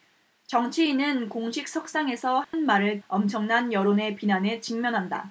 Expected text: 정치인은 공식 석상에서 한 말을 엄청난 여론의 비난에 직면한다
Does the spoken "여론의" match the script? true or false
true